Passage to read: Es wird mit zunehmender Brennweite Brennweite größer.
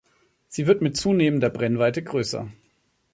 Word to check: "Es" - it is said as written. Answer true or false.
false